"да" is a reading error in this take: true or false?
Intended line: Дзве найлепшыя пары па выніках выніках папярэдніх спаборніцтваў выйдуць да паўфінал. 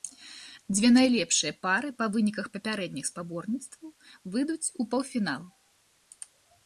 true